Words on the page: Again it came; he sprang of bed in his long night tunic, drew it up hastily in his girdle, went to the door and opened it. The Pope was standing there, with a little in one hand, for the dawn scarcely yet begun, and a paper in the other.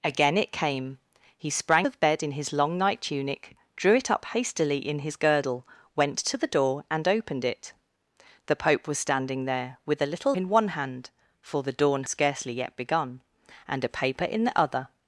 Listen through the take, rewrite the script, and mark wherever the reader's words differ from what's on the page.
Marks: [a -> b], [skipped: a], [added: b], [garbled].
Again it came; he sprang of bed in his long night tunic, drew it up hastily in his girdle, went to the door and opened it. The Pope was standing there, with a little in one hand, for the dawn scarcely yet begun, and a paper in the other.